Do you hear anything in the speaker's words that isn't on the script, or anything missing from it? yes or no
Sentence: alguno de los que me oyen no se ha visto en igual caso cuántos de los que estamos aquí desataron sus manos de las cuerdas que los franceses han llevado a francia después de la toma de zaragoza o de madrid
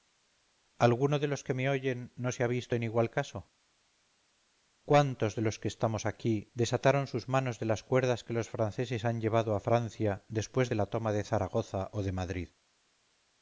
no